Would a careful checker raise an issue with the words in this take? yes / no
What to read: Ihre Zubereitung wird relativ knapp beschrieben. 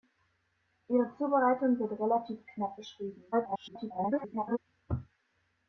yes